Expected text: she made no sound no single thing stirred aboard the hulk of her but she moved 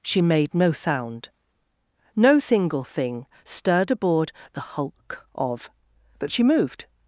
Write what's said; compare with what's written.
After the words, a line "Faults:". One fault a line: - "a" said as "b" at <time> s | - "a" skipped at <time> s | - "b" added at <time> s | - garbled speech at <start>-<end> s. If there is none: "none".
she made no sound no single thing stirred aboard the hulk of but she moved
Faults:
- "her" skipped at 5.7 s